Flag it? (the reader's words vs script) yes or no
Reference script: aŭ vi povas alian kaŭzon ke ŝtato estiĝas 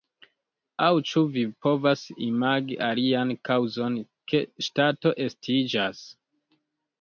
yes